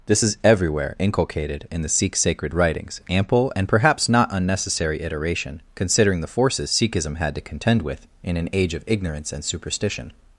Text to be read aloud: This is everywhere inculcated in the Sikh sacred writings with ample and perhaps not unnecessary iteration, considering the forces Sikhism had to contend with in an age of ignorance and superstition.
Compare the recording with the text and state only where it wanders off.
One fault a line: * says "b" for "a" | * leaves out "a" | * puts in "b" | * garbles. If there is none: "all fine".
* leaves out "with"